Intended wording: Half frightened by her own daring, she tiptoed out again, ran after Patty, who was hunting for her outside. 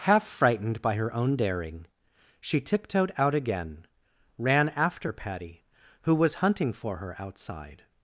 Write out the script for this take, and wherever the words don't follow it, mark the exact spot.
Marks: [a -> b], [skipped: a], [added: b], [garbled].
Half frightened by her own daring, she tiptoed out again, ran after Patty, who was hunting for her outside.